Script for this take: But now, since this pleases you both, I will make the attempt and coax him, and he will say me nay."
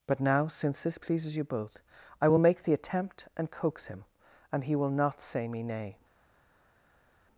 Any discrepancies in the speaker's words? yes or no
yes